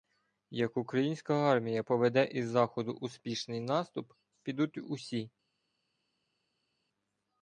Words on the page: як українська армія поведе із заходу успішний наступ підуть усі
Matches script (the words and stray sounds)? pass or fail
pass